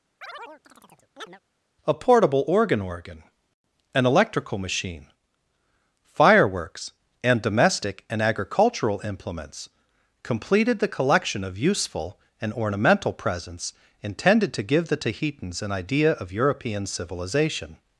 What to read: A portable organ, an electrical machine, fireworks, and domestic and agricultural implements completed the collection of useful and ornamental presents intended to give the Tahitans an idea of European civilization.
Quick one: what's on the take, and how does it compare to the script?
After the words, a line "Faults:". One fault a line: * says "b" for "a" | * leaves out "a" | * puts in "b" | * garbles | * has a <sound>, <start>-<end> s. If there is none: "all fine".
A portable organ organ, an electrical machine, fireworks, and domestic and agricultural implements completed the collection of useful and ornamental presents intended to give the Tahitans an idea of European civilization.
Faults:
* has a chirp, 0.2-1.4 s
* puts in "organ"